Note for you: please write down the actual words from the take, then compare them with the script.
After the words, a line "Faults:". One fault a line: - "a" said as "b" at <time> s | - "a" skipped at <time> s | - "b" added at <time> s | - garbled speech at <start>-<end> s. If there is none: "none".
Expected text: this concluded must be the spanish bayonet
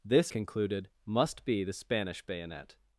this concluded must be the spanish bayonet
Faults:
none